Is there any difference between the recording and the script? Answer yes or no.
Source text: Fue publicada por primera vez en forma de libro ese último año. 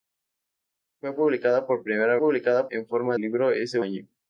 yes